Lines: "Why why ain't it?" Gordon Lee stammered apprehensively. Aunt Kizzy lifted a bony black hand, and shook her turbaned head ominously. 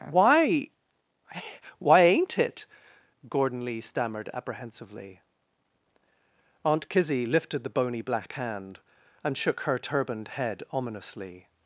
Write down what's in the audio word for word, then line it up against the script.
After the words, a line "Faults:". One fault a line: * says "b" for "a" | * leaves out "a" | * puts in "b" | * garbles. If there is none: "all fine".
"Why why ain't it?" Gordon Lee stammered apprehensively. Aunt Kizzy lifted the bony black hand, and shook her turbaned head ominously.
Faults:
* says "the" for "a"